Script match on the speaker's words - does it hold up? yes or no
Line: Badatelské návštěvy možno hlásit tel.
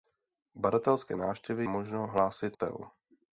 yes